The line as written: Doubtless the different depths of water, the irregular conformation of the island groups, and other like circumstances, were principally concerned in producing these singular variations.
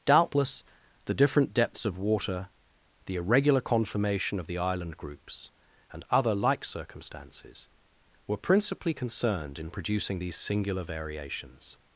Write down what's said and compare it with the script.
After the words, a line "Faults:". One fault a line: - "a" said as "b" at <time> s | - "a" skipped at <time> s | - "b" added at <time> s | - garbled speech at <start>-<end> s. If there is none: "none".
Doubtless the different depths of water, the irregular conformation of the island groups, and other like circumstances, were principally concerned in producing these singular variations.
Faults:
none